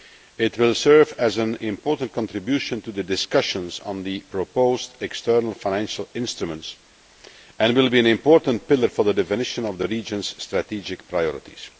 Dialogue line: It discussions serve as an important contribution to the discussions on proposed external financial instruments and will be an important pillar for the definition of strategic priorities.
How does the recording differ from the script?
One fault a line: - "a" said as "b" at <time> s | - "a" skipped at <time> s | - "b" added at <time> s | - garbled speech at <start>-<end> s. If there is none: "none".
- "discussions" said as "will" at 0.6 s
- "the" added at 4.0 s
- "the region's" added at 9.8 s